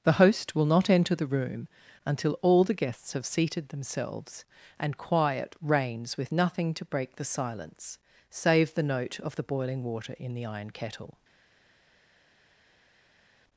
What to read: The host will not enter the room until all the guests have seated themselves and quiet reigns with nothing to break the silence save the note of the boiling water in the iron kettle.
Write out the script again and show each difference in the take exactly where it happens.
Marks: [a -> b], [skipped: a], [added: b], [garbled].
The host will not enter the room until all the guests have seated themselves and quiet reigns with nothing to break the silence save the note of the boiling water in the iron kettle.